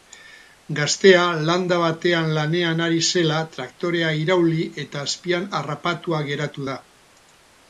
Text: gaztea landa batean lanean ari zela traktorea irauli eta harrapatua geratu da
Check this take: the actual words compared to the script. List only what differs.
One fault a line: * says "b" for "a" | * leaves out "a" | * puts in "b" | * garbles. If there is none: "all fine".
* puts in "azpian"